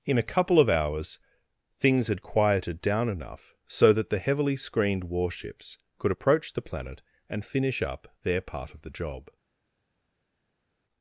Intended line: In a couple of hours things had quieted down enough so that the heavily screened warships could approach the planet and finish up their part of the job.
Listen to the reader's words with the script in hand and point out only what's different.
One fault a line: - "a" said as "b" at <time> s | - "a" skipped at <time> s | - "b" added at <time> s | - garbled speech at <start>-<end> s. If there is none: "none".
none